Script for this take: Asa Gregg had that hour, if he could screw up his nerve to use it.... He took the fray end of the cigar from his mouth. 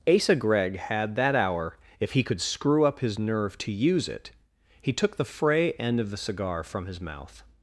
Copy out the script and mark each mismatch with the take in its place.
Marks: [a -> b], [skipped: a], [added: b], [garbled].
Asa Gregg had that hour, if he could screw up his nerve to use it.... He took the fray end of the cigar from his mouth.